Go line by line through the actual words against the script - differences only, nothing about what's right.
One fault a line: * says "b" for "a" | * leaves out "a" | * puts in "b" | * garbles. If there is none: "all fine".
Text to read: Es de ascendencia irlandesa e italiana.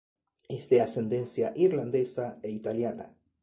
all fine